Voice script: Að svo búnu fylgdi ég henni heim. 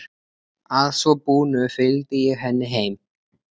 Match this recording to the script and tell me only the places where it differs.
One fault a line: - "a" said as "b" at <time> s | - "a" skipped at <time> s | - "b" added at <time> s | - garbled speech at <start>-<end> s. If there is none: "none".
none